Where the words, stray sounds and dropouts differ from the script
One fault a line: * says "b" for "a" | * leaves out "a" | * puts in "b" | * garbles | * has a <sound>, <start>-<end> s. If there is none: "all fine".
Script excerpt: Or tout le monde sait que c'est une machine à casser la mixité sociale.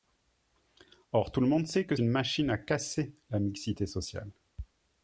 * leaves out "c'est"